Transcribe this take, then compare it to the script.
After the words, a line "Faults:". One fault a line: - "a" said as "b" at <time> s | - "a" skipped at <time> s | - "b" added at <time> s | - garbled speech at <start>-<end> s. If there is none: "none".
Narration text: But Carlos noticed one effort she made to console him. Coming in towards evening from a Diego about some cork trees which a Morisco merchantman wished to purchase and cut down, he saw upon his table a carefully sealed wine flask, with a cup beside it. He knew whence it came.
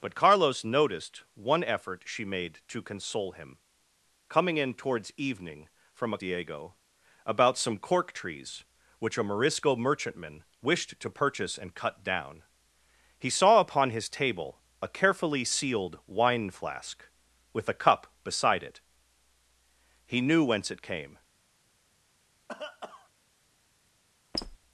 But Carlos noticed one effort she made to console him. Coming in towards evening from a Diego about some cork trees which a Morisco merchantman wished to purchase and cut down, he saw upon his table a carefully sealed wine flask, with a cup beside it. He knew whence it came.
Faults:
none